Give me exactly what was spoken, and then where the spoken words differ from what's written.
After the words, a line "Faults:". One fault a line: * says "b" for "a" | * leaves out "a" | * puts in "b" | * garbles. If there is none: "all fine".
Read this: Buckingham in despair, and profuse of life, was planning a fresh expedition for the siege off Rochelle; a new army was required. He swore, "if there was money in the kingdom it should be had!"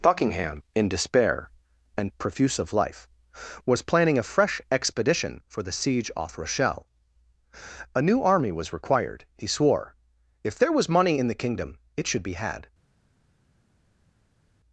Buckingham in despair, and profuse of life, was planning a fresh expedition for the siege off Rochelle; a new army was required. He swore, "if there was money in the kingdom it should be had!"
Faults:
all fine